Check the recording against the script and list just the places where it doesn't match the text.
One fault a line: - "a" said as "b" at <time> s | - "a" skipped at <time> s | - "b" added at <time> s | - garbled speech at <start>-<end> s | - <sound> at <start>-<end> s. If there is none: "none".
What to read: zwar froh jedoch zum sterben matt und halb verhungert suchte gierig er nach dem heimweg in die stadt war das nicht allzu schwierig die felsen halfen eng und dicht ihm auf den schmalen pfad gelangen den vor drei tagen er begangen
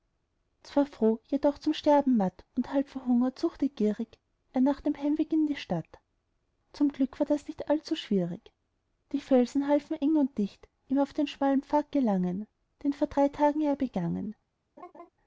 - "zum glück" added at 6.7 s
- laugh at 14.8-15.1 s